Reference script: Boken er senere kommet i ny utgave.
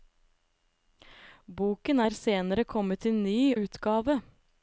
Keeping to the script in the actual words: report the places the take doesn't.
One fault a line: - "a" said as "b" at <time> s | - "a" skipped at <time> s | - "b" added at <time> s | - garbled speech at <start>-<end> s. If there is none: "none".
none